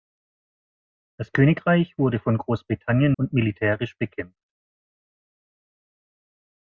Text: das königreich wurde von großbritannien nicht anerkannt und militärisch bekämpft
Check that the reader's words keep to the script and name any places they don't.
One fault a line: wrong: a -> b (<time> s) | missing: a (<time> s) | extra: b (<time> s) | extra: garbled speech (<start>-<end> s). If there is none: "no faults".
missing: nicht anerkannt (3.1 s)